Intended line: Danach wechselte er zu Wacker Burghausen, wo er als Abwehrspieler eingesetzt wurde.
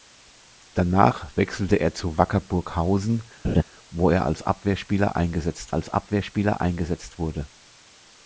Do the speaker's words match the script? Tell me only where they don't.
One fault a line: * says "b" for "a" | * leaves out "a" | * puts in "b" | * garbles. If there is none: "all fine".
* puts in "als Abwehrspieler eingesetzt"